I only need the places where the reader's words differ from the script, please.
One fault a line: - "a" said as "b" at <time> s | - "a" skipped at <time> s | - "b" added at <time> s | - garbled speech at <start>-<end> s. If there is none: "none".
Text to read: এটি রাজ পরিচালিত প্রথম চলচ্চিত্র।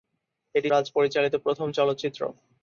none